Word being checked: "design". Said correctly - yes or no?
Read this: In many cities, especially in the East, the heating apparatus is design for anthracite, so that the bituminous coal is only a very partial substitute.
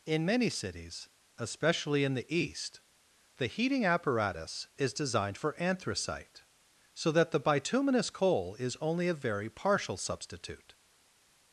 no